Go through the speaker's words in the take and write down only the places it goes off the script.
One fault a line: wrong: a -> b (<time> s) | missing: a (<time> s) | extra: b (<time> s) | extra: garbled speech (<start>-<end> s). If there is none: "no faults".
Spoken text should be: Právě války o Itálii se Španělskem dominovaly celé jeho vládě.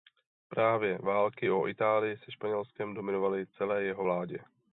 no faults